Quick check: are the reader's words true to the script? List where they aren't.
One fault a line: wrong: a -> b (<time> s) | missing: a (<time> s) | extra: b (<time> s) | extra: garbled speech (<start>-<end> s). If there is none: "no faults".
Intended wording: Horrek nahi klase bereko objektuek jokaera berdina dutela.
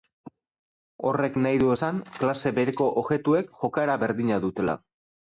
extra: du esan (1.6 s)